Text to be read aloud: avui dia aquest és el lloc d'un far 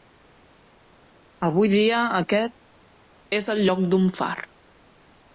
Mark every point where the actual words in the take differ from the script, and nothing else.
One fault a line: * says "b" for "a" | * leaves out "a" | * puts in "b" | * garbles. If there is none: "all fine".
all fine